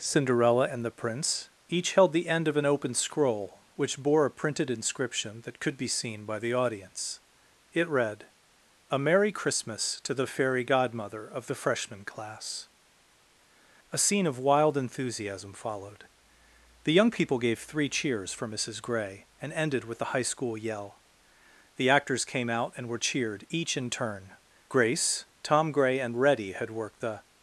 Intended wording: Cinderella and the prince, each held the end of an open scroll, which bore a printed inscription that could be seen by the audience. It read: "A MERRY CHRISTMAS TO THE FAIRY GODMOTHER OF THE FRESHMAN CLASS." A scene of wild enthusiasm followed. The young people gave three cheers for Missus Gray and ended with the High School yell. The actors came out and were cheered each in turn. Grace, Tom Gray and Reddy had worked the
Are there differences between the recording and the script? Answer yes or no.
no